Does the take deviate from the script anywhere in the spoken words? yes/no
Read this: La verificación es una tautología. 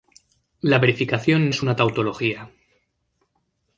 no